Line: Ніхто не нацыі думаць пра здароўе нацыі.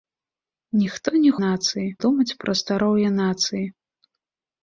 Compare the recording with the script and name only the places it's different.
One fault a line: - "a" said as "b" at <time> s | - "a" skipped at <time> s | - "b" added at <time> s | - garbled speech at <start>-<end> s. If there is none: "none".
none